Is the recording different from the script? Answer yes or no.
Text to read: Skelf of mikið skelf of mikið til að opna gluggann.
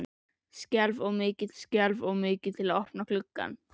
no